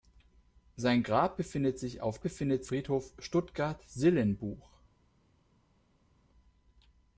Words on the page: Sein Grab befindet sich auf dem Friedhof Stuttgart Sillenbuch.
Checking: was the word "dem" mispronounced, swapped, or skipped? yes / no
yes